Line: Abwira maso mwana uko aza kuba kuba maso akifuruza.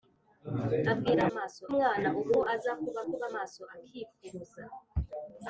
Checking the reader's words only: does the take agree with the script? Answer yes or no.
yes